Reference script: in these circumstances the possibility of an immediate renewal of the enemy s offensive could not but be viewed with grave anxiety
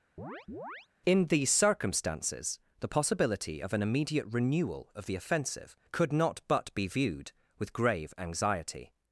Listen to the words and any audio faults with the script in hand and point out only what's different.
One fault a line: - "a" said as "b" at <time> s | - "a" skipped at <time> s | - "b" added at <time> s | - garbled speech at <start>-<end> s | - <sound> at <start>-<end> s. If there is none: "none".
- chirp at 0.2-0.9 s
- "enemy s" skipped at 5.2 s